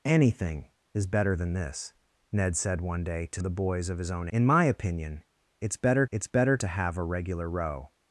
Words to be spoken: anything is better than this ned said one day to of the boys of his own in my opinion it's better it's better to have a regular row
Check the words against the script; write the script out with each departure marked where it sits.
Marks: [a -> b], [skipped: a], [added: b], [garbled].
anything is better than this ned said one day to of the boys of his own in my opinion it's better it's better to have a regular row